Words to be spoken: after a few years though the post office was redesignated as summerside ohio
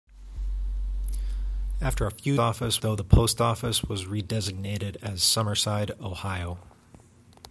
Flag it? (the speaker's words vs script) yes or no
yes